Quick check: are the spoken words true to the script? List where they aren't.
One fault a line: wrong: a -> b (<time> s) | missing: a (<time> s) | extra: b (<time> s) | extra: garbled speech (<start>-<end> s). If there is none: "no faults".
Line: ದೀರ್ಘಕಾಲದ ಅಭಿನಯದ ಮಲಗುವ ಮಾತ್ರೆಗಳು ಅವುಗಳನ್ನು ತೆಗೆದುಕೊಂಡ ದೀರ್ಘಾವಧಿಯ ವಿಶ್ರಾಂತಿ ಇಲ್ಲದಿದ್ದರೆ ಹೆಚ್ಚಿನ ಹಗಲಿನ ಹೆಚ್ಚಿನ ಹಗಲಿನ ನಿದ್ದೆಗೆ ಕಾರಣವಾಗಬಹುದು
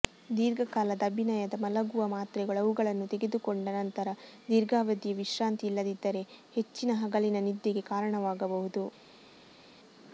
extra: ನಂತರ (3.8 s)
missing: ಹೆಚ್ಚಿನ ಹಗಲಿನ (7.4 s)